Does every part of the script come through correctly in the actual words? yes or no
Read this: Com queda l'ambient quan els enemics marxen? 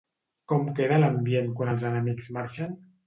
yes